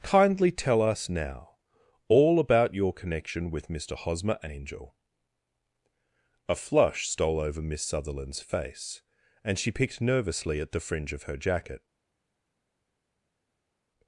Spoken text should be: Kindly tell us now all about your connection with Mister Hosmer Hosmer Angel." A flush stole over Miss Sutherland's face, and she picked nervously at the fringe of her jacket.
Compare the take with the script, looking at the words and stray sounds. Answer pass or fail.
fail